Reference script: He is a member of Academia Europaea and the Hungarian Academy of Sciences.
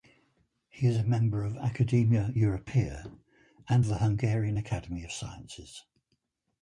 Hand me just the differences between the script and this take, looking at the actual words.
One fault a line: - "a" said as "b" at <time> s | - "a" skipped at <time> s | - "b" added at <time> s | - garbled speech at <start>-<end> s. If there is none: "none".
none